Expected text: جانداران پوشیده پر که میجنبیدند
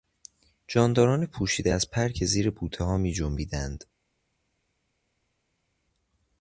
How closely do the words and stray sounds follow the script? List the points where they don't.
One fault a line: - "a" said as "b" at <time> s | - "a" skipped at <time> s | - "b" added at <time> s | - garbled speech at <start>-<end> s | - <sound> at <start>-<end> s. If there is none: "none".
- "از" added at 1.7 s
- "زیر بوتهها" added at 2.3 s